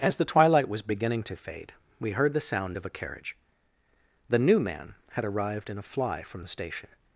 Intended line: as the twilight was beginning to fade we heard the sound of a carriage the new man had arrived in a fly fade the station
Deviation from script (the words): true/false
true